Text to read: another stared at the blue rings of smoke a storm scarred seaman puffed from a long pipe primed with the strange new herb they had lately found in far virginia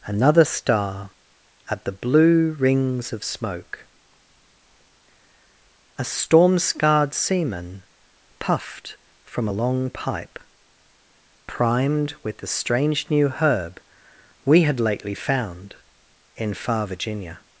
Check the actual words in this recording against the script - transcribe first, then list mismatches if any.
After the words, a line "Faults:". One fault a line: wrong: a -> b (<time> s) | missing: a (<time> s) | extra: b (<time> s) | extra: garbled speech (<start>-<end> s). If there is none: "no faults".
another star at the blue rings of smoke a storm scarred seaman puffed from a long pipe primed with the strange new herb we had lately found in far virginia
Faults:
wrong: stared -> star (0.4 s)
wrong: they -> we (14.4 s)